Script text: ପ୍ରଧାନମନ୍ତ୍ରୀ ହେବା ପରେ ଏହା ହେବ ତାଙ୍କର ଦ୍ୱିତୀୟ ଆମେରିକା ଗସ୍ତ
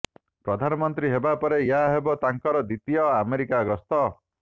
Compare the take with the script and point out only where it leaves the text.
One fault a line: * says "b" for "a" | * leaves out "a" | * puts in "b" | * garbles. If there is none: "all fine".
all fine